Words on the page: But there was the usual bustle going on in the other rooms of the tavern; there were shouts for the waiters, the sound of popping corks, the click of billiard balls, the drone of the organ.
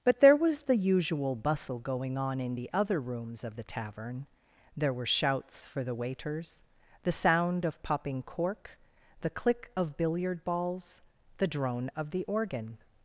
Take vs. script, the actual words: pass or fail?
fail